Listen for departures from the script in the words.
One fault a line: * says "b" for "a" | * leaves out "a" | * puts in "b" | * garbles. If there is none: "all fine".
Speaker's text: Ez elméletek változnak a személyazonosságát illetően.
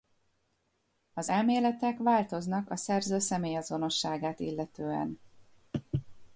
* says "Az" for "Ez"
* puts in "szerző"